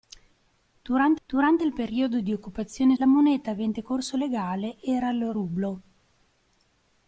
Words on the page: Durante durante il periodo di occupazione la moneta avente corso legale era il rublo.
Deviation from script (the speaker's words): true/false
false